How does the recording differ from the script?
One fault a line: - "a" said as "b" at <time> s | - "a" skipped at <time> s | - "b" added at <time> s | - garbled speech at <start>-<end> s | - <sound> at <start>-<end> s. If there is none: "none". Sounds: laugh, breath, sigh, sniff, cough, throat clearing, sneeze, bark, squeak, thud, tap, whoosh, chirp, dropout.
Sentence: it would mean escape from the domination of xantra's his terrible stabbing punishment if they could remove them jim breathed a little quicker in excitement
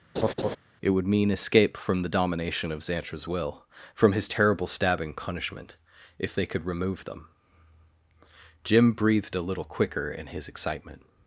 - laugh at 0.1-0.6 s
- "will from" added at 3.3 s
- "his" added at 10.3 s